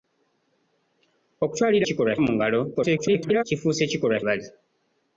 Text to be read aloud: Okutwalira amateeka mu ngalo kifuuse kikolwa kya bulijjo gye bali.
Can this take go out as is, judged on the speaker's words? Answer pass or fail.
fail